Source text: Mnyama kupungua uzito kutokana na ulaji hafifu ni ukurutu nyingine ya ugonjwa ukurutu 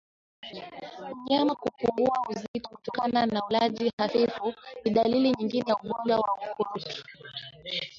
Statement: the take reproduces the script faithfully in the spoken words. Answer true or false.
false